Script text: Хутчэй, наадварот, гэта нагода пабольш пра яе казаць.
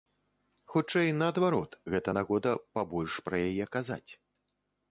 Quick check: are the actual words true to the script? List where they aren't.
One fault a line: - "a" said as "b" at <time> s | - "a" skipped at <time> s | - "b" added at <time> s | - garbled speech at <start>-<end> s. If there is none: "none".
none